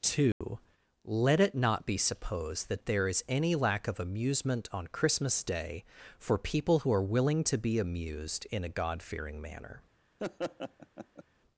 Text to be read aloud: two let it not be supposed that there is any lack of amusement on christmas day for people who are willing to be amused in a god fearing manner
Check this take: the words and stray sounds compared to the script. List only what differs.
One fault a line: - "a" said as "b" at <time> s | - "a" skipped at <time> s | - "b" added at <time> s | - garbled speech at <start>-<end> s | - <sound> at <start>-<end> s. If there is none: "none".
- dropout at 0.3-0.4 s
- laugh at 10.2-11.2 s